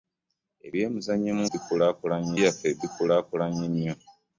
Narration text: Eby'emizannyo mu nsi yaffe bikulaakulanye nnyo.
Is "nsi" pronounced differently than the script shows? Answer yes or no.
yes